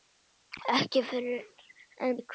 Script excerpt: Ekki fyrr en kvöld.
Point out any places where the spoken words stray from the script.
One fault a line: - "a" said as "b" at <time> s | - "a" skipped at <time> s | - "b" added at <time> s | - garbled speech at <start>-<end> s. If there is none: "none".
none